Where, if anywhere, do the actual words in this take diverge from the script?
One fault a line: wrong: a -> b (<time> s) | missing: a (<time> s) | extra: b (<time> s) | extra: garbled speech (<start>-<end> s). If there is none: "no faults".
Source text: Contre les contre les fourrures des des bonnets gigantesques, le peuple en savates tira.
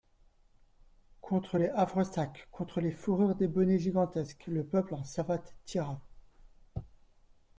extra: havresacs (1.7 s)
missing: des (3.5 s)